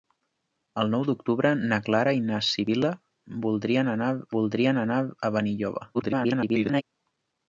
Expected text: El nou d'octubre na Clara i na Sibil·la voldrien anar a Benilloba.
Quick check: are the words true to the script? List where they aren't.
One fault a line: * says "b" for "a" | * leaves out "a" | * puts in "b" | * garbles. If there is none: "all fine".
* puts in "voldrien anar"
* garbles